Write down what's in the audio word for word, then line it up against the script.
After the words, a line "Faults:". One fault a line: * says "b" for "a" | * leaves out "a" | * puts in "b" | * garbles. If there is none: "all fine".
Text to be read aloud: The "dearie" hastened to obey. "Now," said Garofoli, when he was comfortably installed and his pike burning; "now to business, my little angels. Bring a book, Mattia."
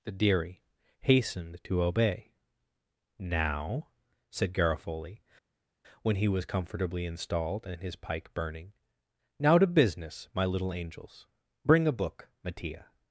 The "dearie" hastened to obey. "Now," said Garofoli, when he was comfortably installed and his pike burning; "now to business, my little angels. Bring a book, Mattia."
Faults:
all fine